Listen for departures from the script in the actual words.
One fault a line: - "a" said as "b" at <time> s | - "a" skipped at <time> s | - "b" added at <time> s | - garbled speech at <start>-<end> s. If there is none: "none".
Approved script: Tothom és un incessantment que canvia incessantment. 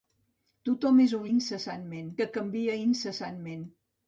none